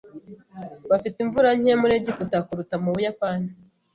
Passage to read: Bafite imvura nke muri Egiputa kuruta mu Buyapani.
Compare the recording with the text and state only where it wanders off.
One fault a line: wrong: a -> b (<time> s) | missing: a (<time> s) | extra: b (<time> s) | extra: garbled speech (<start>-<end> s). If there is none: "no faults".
no faults